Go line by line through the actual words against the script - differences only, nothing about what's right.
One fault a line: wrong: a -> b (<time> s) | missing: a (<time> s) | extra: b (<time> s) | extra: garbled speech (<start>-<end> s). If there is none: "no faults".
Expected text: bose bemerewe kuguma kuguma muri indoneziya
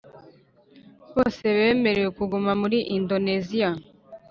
missing: kuguma (2.5 s)